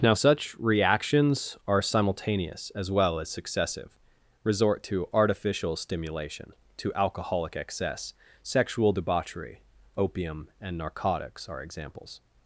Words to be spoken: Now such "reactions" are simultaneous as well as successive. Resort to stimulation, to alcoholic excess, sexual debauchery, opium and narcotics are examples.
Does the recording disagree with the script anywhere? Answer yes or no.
yes